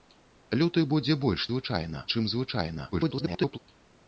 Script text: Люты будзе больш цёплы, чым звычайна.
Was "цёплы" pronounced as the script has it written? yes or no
no